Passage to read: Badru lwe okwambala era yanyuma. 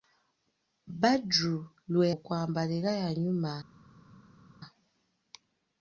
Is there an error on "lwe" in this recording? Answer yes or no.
no